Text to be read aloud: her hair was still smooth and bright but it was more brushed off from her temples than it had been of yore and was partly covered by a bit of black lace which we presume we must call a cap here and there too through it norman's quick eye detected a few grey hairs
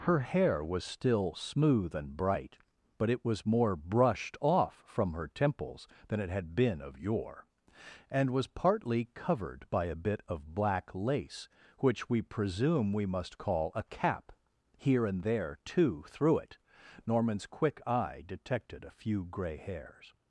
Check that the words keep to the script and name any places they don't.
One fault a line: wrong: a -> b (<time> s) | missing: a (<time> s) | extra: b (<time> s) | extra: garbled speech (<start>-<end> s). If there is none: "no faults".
no faults